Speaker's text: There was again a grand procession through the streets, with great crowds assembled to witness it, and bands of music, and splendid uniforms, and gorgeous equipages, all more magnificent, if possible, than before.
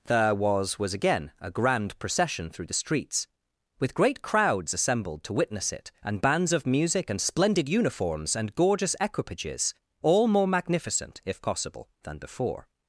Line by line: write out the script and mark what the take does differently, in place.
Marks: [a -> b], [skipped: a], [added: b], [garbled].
There was [added: was] again a grand procession through the streets, with great crowds assembled to witness it, and bands of music, and splendid uniforms, and gorgeous equipages, all more magnificent, if possible, than before.